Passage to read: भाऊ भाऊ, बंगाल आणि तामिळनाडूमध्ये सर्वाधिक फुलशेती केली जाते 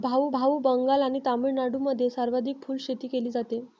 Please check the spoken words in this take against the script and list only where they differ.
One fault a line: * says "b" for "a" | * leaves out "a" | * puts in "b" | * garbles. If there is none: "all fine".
all fine